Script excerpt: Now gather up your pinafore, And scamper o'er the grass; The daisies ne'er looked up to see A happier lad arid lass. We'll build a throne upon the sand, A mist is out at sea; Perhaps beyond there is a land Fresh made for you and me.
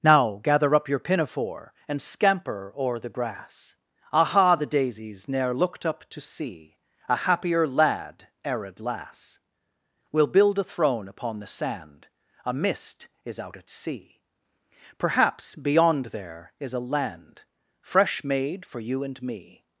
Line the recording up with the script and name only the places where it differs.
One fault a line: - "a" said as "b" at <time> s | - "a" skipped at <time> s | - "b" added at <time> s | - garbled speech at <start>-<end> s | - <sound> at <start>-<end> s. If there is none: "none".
- "aha" added at 4.1 s